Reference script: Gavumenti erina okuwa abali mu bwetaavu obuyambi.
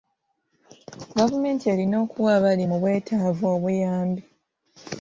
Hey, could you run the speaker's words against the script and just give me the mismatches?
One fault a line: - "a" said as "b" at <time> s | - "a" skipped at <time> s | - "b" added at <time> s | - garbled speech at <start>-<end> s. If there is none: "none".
none